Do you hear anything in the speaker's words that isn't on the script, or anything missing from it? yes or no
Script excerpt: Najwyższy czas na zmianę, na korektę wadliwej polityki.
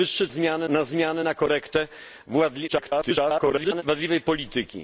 yes